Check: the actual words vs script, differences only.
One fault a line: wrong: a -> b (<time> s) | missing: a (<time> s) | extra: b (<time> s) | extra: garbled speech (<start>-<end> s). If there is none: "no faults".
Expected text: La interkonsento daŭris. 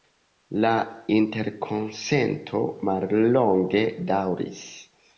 extra: mallonge (2.9 s)